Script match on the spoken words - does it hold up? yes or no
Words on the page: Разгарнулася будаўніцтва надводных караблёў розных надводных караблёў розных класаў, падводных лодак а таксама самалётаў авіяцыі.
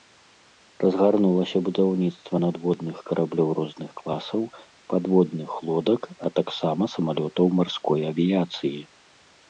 no